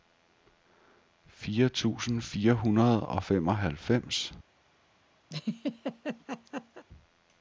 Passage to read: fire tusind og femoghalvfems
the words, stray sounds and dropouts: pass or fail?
fail